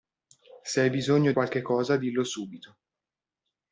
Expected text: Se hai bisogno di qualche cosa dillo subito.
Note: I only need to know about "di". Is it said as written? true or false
false